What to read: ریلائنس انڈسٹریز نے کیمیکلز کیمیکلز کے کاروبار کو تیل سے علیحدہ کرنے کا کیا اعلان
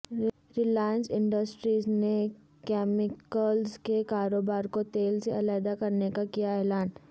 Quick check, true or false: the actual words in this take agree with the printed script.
false